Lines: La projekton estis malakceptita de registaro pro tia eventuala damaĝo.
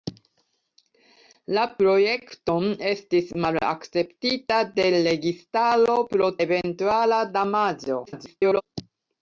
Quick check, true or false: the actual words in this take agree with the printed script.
false